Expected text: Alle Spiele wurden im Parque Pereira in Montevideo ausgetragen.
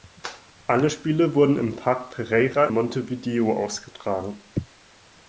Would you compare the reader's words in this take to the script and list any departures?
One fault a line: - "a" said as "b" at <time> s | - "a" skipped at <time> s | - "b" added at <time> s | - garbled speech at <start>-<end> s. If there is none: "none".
- "in" skipped at 2.7 s